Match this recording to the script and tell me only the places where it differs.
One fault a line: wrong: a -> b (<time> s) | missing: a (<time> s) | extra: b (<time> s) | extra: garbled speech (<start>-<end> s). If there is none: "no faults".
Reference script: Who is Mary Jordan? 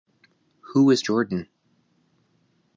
missing: Mary (1.1 s)